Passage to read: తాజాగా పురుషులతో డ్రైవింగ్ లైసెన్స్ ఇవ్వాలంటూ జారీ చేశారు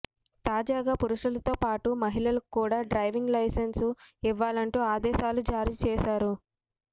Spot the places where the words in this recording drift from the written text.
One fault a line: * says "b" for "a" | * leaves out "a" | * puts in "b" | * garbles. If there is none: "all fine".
* puts in "పాటు మహిళలకు కూడా"
* puts in "ఆదేశాలు"